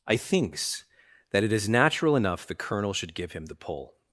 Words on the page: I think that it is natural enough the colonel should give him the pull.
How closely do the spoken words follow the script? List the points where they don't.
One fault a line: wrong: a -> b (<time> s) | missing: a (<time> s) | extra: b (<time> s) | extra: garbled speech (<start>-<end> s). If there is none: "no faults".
wrong: think -> thinks (0.2 s)